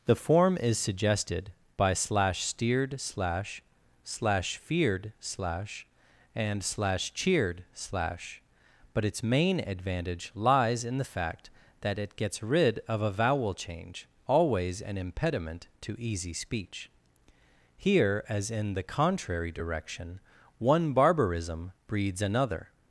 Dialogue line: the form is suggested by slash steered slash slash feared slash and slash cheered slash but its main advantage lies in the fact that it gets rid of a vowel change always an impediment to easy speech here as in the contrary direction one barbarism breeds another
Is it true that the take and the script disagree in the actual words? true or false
false